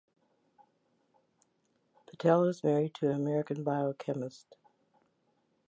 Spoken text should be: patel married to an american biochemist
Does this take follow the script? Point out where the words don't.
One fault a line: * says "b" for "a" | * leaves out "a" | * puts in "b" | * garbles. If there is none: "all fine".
* puts in "is"